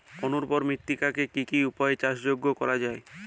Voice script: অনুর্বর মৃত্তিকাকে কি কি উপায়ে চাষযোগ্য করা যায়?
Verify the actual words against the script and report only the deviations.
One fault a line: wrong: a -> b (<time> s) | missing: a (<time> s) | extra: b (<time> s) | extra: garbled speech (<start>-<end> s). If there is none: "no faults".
no faults